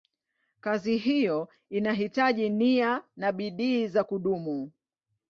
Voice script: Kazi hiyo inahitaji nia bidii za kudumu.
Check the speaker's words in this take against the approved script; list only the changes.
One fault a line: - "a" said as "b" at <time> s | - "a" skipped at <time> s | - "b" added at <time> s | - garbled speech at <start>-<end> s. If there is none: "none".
- "na" added at 3.1 s